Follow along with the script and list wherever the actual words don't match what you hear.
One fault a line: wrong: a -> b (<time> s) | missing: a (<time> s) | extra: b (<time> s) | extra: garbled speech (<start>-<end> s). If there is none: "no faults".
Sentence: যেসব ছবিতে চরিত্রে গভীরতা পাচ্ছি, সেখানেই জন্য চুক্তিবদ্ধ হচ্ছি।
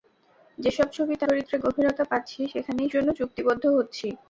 no faults